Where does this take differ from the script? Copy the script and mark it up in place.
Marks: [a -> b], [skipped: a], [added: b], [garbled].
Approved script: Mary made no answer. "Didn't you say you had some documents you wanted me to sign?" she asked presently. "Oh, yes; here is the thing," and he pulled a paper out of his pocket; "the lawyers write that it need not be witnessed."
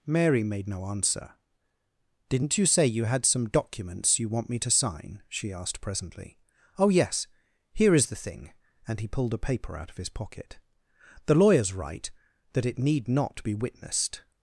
Mary made no answer. "Didn't you say you had some documents you [wanted -> want] me to sign?" she asked presently. "Oh, yes; here is the thing," and he pulled a paper out of his pocket; "the lawyers write that it need not be witnessed."